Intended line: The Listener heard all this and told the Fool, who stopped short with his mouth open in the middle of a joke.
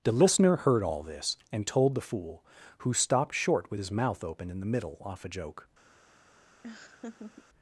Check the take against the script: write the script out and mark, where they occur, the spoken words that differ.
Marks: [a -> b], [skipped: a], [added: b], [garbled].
The Listener heard all this and told the Fool, who stopped short with his mouth open in the middle [of -> off] a joke.